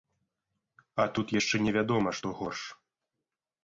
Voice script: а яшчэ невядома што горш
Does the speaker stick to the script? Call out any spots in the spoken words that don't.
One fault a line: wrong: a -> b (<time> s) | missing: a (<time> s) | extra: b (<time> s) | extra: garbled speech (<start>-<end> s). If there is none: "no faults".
extra: тут (1.2 s)